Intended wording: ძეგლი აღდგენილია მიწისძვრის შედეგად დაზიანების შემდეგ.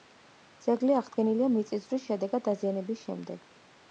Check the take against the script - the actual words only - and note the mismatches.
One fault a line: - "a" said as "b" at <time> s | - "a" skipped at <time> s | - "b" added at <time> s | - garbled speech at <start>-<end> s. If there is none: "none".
none